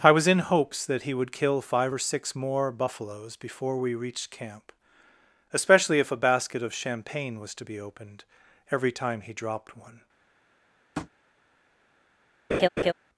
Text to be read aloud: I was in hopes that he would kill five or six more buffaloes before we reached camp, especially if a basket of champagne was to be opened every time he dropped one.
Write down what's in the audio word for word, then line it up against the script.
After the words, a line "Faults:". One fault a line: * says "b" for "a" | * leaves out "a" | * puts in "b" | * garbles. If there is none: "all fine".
I was in hopes that he would kill five or six more buffaloes before we reached camp, especially if a basket of champagne was to be opened every time he dropped one.
Faults:
all fine